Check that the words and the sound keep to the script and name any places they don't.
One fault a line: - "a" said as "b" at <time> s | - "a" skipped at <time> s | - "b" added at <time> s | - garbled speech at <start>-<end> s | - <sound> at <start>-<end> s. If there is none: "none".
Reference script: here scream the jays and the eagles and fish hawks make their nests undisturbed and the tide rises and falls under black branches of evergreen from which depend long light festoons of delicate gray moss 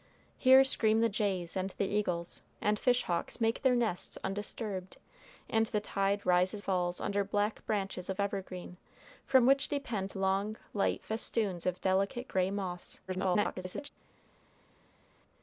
- "and" skipped at 6.6 s
- garbled speech at 13.1-13.9 s